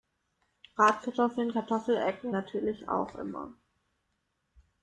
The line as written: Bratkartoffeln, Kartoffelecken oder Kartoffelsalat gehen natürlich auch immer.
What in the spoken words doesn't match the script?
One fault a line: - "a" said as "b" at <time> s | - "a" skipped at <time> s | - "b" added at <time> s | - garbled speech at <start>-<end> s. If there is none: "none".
- "oder Kartoffelsalat gehen" skipped at 2.3 s